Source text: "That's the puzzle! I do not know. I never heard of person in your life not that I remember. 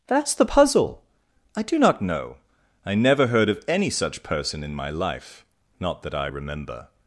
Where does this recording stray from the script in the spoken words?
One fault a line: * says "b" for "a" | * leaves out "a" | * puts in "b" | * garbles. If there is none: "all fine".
* puts in "any such"
* says "my" for "your"